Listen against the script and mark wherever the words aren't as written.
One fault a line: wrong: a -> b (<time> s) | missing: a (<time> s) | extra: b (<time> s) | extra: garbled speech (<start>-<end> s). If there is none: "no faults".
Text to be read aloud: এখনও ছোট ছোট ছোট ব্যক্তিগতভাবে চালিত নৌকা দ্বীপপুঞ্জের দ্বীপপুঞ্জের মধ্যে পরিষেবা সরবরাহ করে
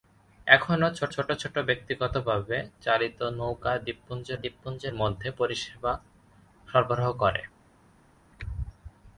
no faults